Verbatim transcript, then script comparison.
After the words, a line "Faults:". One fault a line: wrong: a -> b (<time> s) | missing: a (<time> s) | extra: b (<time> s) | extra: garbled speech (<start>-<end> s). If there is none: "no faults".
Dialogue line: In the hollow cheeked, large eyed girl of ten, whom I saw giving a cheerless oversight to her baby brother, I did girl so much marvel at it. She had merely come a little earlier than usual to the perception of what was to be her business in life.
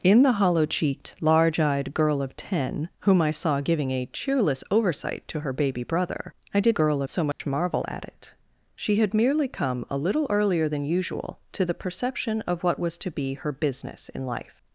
In the hollow cheeked, large eyed girl of ten, whom I saw giving a cheerless oversight to her baby brother, I did girl so much marvel at it. She had merely come a little earlier than usual to the perception of what was to be her business in life.
Faults:
no faults